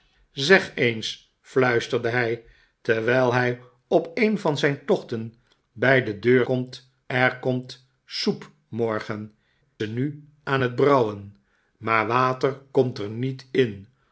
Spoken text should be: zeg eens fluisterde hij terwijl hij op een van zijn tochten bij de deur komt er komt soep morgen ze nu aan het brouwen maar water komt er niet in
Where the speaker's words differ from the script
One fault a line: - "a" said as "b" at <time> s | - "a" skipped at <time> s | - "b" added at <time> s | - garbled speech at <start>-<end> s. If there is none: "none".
none